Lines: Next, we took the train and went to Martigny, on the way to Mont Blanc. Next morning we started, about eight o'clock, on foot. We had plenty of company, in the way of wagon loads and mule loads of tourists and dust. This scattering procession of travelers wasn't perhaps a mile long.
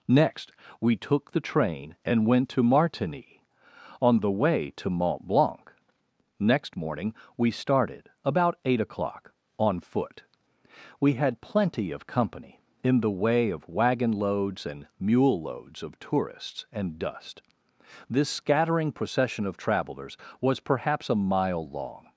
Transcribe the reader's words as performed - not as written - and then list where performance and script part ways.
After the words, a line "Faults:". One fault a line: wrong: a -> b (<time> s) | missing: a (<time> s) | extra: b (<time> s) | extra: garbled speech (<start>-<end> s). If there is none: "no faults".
Next, we took the train and went to Martigny, on the way to Mont Blanc. Next morning we started, about eight o'clock, on foot. We had plenty of company, in the way of wagon loads and mule loads of tourists and dust. This scattering procession of travelers was perhaps a mile long.
Faults:
wrong: wasn't -> was (20.4 s)